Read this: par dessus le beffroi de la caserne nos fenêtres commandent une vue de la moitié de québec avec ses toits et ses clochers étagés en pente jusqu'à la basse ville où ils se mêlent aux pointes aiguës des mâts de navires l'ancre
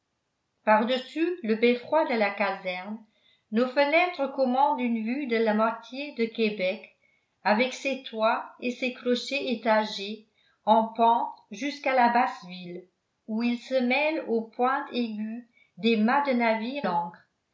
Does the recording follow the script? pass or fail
pass